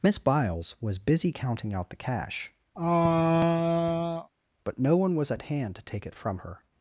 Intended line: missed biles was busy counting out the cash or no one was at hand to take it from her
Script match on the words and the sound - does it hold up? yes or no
no